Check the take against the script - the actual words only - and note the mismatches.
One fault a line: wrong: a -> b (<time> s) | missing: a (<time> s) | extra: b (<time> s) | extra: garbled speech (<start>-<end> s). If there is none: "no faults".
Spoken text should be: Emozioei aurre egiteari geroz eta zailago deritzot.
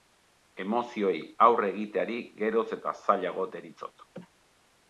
no faults